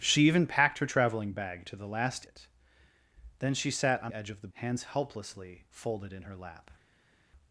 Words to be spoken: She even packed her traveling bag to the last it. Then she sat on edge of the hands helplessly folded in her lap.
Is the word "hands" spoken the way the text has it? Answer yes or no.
yes